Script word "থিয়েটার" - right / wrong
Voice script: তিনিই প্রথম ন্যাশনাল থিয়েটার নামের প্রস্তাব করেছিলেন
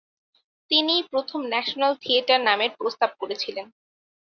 right